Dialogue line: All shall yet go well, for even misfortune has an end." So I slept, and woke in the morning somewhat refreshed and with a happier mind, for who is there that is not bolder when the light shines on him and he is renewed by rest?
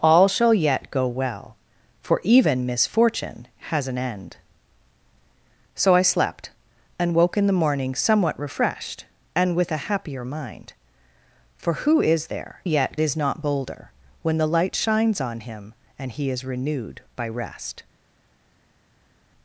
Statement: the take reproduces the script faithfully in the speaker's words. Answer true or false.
false